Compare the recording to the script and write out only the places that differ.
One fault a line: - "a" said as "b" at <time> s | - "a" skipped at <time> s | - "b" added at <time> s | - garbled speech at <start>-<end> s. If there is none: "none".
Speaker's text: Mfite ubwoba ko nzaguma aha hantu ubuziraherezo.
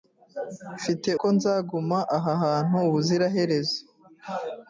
- "ubwoba" skipped at 1.1 s